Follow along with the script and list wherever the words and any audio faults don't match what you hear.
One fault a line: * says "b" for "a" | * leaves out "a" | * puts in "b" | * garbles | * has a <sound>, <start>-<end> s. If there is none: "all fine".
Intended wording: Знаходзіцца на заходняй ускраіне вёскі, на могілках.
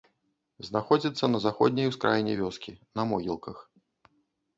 all fine